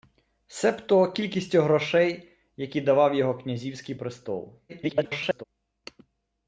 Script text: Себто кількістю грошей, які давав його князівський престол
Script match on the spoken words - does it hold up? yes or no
no